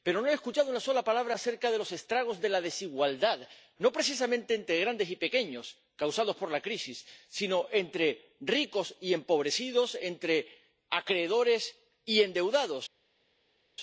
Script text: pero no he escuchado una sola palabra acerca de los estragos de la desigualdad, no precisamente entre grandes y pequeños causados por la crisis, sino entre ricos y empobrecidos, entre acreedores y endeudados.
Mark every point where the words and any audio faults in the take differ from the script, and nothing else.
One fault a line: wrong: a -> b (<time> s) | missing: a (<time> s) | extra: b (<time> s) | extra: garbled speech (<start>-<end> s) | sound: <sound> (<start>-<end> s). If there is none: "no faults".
no faults